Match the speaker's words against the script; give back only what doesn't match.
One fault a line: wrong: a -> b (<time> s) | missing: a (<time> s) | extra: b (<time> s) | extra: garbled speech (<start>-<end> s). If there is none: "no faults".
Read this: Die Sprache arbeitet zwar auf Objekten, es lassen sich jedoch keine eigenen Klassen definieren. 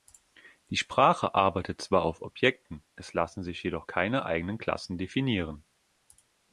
no faults